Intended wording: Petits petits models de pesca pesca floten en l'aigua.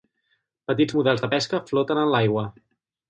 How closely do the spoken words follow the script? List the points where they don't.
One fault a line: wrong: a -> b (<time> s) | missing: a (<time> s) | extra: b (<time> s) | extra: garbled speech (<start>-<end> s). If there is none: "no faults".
missing: petits (0.9 s)
missing: pesca (1.6 s)